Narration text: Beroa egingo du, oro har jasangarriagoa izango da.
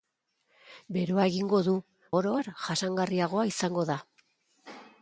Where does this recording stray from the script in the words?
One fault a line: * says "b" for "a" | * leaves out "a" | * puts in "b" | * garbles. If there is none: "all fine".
all fine